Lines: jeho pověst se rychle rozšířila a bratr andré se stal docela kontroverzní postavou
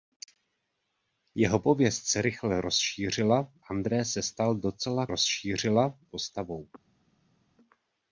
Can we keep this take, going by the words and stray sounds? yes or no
no